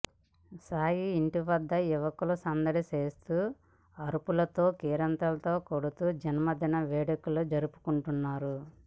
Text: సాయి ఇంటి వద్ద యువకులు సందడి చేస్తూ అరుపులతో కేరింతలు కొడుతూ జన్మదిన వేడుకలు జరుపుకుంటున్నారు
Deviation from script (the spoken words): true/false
false